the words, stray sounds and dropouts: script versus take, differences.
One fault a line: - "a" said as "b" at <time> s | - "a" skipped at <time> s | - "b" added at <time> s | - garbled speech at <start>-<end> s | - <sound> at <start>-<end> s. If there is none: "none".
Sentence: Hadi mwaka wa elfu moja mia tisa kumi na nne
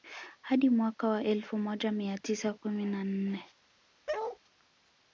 - bark at 4.1-4.4 s